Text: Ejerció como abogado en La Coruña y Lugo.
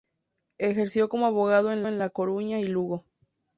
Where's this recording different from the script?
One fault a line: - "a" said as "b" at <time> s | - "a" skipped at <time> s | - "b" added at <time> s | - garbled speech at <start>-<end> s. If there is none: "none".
- "en" added at 1.9 s